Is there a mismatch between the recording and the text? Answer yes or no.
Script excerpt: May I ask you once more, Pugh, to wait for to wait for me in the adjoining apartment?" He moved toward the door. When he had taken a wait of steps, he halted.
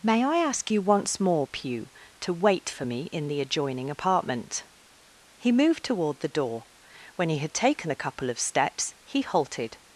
yes